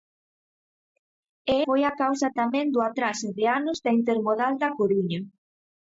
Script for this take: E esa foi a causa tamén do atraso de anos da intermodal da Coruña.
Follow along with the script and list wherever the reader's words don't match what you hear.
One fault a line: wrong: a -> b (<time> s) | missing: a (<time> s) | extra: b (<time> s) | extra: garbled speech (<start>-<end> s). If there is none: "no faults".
missing: esa (1.6 s)